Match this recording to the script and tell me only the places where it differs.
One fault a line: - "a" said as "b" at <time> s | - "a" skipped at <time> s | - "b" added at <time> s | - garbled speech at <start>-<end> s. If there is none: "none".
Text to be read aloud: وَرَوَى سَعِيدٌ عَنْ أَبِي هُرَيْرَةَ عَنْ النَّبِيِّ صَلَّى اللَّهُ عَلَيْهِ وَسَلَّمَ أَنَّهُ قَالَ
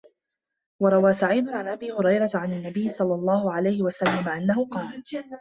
none